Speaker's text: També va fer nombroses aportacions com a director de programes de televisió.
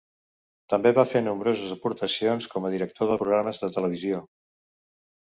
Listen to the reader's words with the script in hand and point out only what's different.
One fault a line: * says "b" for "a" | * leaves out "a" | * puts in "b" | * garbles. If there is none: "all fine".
all fine